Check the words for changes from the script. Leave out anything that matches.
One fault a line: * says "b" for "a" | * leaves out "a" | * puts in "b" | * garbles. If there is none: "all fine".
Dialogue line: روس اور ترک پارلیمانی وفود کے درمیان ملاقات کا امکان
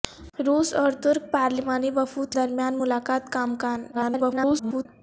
* leaves out "کے"
* garbles